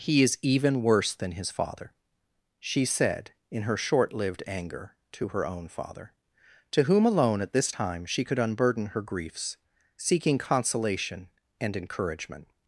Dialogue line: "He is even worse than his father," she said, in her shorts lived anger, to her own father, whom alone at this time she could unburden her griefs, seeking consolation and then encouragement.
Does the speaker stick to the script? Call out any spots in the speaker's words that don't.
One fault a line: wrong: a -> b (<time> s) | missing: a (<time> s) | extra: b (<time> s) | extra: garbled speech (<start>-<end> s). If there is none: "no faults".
wrong: shorts -> short (3.7 s)
extra: to (6.7 s)
missing: then (11.8 s)